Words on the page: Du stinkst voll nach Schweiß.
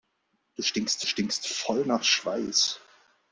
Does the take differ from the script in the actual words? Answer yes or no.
yes